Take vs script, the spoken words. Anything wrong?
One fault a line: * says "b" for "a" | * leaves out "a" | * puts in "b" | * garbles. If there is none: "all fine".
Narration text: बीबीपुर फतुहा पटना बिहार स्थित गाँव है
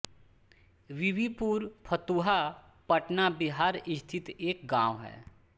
* puts in "एक"